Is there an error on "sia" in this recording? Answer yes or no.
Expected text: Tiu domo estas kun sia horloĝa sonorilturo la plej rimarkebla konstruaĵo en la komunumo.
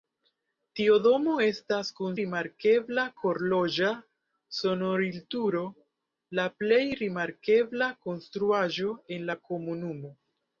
yes